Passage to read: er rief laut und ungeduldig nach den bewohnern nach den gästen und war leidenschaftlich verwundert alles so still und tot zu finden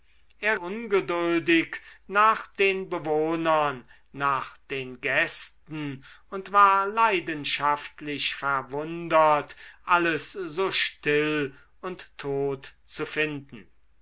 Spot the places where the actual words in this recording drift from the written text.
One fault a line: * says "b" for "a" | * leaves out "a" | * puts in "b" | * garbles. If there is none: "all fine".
* leaves out "rief laut und"